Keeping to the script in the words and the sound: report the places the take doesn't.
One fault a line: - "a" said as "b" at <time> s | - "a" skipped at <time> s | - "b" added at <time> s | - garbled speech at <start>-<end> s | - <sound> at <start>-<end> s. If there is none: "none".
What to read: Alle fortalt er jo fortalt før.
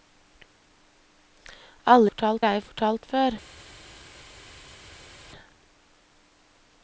none